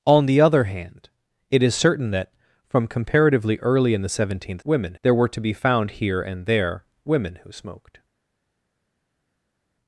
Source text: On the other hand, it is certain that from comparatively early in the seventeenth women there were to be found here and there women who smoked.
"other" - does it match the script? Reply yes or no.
yes